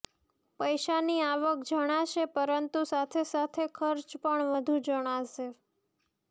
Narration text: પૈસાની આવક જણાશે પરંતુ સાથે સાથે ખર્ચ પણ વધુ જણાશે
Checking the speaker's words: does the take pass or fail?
pass